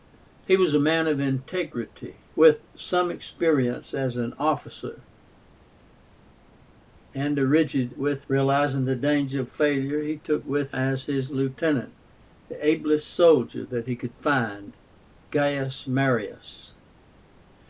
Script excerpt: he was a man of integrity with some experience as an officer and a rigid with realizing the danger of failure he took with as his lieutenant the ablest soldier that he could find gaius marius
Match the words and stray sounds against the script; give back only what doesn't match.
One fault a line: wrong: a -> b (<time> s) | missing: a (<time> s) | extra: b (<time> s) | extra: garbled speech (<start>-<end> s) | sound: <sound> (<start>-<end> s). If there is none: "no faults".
no faults